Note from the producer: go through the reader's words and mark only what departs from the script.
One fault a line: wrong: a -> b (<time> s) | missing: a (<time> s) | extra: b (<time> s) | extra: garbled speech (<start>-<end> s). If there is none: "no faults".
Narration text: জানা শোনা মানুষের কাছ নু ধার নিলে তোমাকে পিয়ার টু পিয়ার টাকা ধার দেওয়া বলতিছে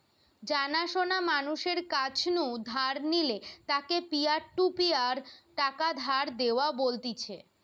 wrong: তোমাকে -> তাকে (3.7 s)